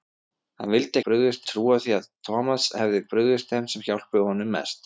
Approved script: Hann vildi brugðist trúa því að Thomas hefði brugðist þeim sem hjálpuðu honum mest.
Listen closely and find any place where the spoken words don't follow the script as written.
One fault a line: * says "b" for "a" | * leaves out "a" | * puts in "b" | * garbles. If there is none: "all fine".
all fine